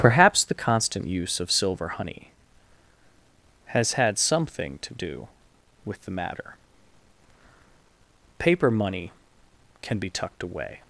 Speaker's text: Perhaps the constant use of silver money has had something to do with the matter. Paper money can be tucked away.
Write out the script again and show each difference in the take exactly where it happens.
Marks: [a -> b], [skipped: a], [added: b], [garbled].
Perhaps the constant use of silver [money -> honey] has had something to do with the matter. Paper money can be tucked away.